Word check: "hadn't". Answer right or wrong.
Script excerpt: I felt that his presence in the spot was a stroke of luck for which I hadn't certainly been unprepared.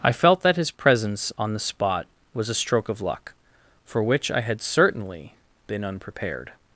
wrong